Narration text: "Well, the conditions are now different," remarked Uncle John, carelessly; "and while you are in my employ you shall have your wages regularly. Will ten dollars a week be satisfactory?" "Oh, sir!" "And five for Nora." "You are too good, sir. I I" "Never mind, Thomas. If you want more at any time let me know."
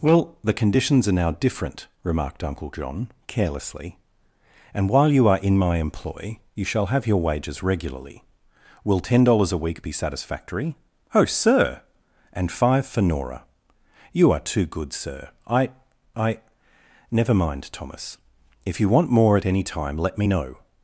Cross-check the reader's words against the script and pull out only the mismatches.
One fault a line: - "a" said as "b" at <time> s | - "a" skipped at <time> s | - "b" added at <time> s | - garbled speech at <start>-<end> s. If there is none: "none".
none